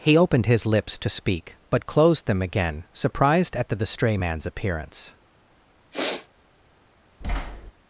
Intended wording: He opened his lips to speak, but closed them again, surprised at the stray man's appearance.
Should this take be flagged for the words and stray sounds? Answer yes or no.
yes